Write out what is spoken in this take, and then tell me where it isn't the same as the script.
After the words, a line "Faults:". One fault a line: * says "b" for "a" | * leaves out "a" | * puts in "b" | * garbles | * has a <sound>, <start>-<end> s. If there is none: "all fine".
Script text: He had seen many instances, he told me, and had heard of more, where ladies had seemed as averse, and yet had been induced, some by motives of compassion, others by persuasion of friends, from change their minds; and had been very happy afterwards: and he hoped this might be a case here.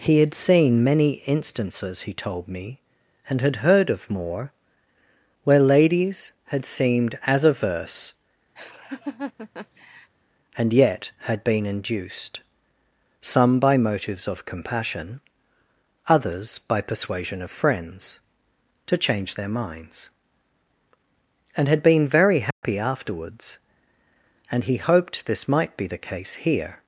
He had seen many instances, he told me, and had heard of more, where ladies had seemed as averse, and yet had been induced, some by motives of compassion, others by persuasion of friends, to change their minds; and had been very happy afterwards: and he hoped this might be the case here.
Faults:
* has a laugh, 8.6-10.1 s
* says "to" for "from"
* has a dropout, 22.5-22.6 s
* says "the" for "a"